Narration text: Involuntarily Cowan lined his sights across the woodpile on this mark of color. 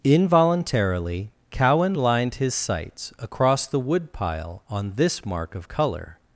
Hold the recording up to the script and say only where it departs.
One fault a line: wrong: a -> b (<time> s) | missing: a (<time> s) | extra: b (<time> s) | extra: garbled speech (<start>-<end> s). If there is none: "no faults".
no faults